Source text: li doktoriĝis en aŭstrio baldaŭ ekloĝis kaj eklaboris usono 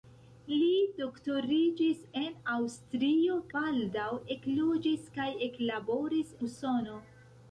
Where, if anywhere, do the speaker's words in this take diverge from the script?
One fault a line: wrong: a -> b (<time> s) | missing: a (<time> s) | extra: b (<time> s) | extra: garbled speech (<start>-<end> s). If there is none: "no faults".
no faults